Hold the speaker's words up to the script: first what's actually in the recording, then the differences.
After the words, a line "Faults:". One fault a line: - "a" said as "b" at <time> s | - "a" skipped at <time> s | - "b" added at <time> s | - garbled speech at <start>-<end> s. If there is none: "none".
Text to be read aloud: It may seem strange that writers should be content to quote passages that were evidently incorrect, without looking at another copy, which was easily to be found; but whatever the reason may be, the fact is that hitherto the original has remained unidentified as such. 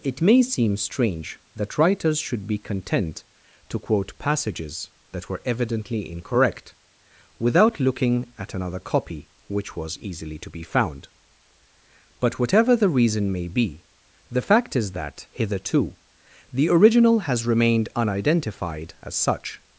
It may seem strange that writers should be content to quote passages that were evidently incorrect, without looking at another copy, which was easily to be found; but whatever the reason may be, the fact is that hitherto the original has remained unidentified as such.
Faults:
none